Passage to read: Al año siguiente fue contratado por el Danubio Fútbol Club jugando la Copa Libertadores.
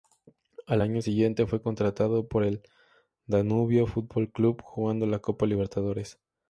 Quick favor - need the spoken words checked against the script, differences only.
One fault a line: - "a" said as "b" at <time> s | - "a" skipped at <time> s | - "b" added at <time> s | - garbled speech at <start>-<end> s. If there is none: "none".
none